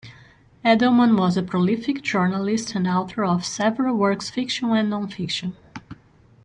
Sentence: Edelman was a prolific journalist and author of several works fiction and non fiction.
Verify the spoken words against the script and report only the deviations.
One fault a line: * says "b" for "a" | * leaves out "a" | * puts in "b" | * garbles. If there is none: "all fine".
all fine